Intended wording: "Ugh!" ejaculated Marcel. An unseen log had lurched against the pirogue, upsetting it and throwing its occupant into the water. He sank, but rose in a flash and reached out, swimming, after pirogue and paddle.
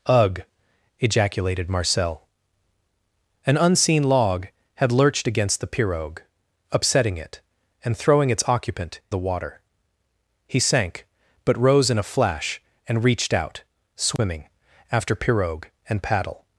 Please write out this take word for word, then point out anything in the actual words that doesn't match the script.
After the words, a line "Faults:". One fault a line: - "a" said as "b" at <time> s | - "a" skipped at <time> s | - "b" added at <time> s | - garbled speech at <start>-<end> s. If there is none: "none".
"Ugh!" ejaculated Marcel. An unseen log had lurched against the pirogue, upsetting it and throwing its occupant the water. He sank, but rose in a flash and reached out, swimming, after pirogue and paddle.
Faults:
- "into" skipped at 9.0 s